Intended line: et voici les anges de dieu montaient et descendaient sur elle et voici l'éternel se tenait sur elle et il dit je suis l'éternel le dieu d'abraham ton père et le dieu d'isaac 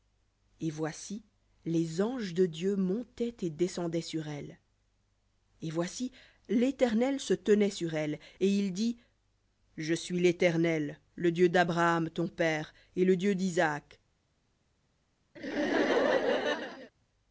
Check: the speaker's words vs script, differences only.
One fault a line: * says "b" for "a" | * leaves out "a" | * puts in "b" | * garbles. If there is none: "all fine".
all fine